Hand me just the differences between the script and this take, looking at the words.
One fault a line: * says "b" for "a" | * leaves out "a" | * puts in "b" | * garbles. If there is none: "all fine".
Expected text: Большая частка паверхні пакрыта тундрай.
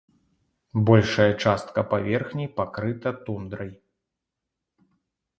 all fine